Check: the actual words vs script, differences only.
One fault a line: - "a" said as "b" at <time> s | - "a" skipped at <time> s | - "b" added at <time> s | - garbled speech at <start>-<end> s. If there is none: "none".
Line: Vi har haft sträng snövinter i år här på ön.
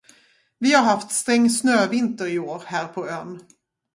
none